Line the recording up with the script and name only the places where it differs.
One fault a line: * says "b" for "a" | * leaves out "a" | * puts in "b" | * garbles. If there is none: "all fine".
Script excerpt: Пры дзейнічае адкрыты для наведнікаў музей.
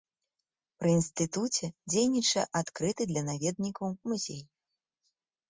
* puts in "інстытуце"